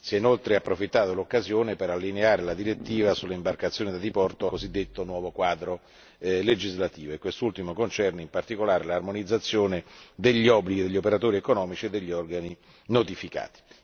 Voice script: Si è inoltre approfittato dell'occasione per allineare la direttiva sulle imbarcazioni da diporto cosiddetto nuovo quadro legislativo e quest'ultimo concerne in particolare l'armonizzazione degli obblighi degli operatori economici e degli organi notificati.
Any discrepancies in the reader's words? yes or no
no